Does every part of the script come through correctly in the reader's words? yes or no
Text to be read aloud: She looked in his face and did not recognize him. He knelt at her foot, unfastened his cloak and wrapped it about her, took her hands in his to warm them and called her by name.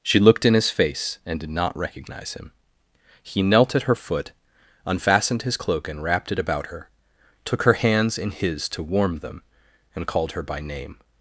yes